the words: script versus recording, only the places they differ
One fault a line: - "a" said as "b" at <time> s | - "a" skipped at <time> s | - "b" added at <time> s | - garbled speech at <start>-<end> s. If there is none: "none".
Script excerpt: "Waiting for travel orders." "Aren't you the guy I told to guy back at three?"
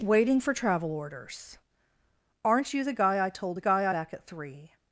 none